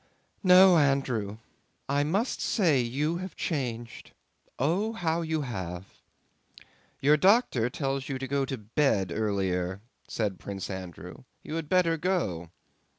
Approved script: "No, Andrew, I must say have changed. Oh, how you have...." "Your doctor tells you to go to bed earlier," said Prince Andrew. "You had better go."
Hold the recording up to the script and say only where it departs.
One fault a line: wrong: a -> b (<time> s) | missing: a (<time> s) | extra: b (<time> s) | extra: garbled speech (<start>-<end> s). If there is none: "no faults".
extra: you (2.8 s)